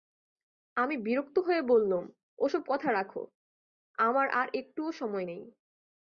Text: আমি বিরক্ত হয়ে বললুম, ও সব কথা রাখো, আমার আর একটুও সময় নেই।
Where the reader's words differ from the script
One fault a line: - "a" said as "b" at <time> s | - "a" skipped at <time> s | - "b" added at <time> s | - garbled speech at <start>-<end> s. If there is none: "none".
none